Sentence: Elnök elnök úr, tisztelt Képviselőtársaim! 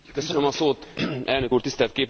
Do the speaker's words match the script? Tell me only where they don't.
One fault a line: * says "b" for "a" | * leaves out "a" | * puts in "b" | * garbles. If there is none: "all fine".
* leaves out "elnök"